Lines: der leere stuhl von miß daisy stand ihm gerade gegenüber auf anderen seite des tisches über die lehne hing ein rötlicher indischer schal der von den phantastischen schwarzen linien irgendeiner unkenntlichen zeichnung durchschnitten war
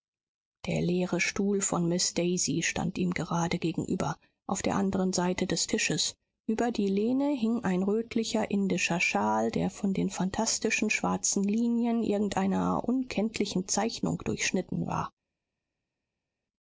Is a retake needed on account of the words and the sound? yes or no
yes